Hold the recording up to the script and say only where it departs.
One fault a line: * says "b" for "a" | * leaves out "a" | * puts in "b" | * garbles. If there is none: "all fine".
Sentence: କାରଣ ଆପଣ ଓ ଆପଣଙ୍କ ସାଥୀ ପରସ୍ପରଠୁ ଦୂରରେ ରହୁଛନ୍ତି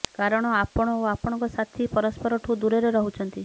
all fine